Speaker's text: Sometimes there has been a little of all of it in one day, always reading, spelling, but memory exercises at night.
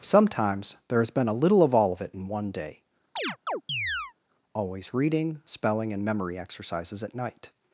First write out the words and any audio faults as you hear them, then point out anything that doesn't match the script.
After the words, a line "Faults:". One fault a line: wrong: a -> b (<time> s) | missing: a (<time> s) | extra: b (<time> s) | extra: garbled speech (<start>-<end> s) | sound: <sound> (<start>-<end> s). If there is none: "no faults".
Sometimes there has been a little of all of it in one day, always reading, spelling, and memory exercises at night.
Faults:
sound: chirp (3.2-4.1 s)
wrong: but -> and (5.9 s)